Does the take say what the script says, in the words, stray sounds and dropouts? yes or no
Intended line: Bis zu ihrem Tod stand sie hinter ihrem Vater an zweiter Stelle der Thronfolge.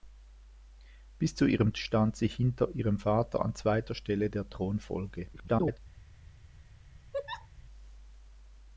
no